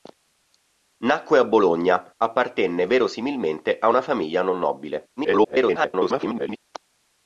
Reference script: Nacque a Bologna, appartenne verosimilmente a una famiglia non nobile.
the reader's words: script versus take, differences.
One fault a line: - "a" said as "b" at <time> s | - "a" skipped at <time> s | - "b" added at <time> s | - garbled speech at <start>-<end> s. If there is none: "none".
- garbled speech at 5.2-6.6 s